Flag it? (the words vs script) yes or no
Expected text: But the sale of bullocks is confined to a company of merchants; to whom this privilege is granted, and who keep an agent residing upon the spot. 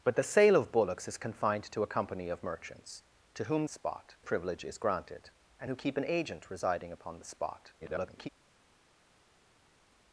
yes